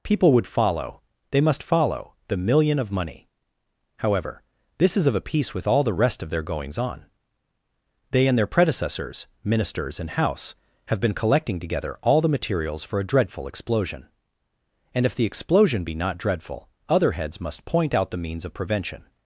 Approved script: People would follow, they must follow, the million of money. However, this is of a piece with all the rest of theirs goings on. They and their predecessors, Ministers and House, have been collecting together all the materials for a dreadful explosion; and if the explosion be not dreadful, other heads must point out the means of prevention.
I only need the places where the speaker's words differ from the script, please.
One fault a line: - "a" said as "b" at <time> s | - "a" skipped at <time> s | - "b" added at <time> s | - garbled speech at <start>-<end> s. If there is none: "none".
- "theirs" said as "their" at 6.3 s